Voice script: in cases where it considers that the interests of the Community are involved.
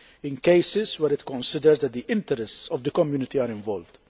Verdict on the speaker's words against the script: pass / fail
pass